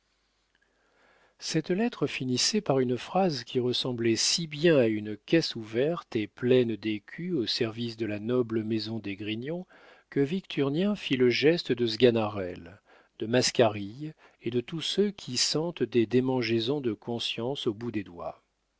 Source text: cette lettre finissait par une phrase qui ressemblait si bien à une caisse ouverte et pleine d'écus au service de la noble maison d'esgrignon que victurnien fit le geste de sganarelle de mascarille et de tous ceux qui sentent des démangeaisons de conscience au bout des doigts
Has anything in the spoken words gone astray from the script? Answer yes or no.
no